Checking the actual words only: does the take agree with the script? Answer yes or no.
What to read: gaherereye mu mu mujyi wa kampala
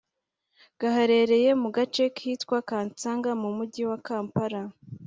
no